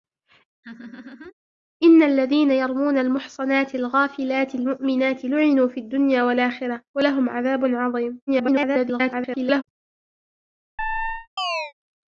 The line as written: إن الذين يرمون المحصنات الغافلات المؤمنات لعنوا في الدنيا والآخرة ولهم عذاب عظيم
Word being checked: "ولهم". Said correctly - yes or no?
yes